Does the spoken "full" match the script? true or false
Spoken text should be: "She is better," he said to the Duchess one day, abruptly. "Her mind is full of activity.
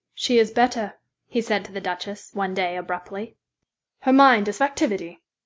false